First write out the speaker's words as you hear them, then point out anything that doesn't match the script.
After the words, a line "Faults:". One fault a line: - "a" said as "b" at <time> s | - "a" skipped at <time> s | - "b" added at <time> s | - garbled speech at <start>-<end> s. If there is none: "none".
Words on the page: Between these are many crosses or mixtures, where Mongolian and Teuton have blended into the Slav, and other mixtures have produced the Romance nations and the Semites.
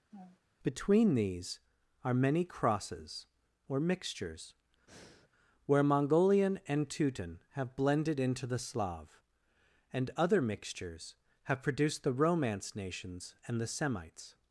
Between these are many crosses or mixtures, where Mongolian and Teuton have blended into the Slav, and other mixtures have produced the Romance nations and the Semites.
Faults:
none